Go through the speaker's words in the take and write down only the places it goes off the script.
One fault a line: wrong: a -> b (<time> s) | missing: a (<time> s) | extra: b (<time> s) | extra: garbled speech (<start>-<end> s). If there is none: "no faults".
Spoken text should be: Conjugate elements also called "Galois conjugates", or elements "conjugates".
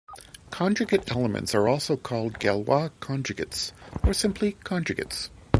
extra: are (1.5 s)
wrong: elements -> simply (4.1 s)